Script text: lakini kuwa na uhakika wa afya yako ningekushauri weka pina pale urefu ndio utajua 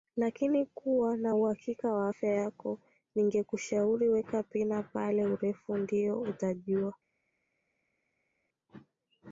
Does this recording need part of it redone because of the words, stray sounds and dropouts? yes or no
no